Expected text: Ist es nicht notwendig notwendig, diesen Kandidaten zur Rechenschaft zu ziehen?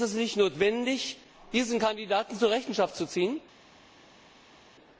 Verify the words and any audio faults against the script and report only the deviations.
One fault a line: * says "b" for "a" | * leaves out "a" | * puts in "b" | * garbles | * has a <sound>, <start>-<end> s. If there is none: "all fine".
* leaves out "notwendig"